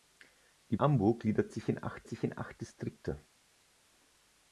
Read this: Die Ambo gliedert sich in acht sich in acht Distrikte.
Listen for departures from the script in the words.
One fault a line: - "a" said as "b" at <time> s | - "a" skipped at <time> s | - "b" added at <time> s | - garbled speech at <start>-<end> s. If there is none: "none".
none